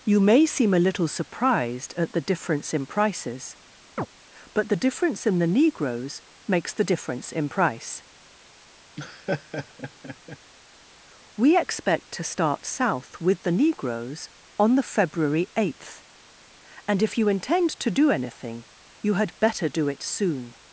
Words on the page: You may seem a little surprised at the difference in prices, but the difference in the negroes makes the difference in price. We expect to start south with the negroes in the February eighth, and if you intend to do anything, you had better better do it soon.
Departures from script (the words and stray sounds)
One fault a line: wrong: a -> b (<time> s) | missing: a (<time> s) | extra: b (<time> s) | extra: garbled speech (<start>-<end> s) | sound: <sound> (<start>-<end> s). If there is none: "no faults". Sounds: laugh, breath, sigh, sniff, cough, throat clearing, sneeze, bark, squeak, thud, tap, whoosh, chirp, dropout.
sound: chirp (4.0-4.1 s)
sound: laugh (9.0-10.4 s)
wrong: in -> on (14.6 s)
missing: better (19.7 s)